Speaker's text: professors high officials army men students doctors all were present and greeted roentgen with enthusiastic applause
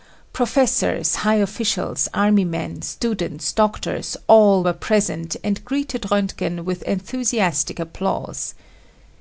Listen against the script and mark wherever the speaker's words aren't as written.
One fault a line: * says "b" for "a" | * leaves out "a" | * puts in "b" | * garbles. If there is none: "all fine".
all fine